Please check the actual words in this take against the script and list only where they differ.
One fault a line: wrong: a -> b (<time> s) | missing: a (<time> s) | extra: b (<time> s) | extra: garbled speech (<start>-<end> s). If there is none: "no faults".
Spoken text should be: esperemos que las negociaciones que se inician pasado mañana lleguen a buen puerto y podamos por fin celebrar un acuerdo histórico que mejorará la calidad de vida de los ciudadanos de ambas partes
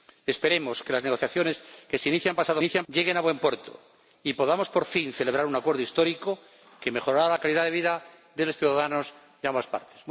wrong: mañana -> inician (2.6 s)